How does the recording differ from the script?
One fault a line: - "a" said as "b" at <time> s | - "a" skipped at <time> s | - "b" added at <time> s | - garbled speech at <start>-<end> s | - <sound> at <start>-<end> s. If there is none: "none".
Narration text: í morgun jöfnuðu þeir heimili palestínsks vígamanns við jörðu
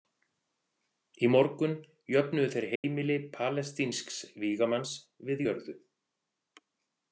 - dropout at 2.8-2.8 s